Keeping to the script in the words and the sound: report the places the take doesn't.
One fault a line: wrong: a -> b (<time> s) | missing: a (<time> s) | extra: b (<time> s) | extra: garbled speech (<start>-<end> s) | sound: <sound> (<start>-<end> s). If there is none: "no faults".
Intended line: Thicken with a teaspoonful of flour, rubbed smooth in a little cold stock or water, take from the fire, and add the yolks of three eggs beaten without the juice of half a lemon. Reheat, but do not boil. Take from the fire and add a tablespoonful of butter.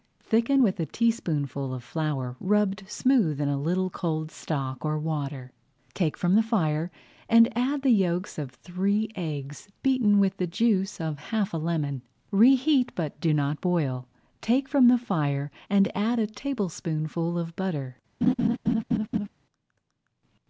wrong: without -> with (10.2 s)
sound: laugh (18.2-19.3 s)